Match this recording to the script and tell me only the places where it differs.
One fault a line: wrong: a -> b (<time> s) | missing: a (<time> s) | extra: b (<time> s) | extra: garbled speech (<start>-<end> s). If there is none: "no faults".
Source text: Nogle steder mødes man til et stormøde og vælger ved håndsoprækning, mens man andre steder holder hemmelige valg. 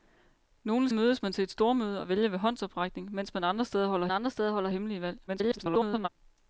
missing: steder (0.9 s)
extra: andre steder holder (4.1 s)
extra: garbled speech (5.3-6.1 s)